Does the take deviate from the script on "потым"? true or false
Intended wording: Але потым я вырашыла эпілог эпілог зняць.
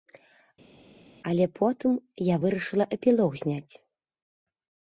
false